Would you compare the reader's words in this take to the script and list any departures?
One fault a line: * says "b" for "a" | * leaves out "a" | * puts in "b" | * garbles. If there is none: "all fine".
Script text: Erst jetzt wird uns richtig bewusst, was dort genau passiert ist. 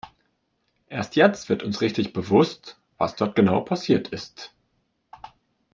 all fine